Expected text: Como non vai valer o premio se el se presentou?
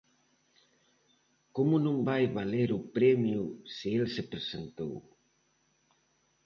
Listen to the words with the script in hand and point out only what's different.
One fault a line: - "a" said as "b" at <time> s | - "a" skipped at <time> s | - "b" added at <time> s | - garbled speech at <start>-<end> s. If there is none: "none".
none